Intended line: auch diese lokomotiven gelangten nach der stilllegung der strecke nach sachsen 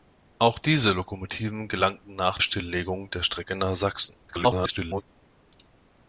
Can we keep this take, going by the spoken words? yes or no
no